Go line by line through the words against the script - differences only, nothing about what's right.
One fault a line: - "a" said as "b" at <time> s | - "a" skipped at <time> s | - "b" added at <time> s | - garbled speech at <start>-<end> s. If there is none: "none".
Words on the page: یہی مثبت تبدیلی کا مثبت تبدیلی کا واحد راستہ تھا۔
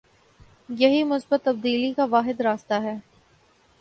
- "مثبت تبدیلی کا" skipped at 2.0 s
- "تھا" said as "ہے" at 2.7 s